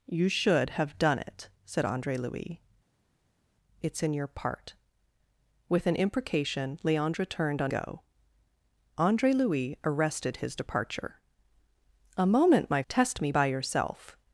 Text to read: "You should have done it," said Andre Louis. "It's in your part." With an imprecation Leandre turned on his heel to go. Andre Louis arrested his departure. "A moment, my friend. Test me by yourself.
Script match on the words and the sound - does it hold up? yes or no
no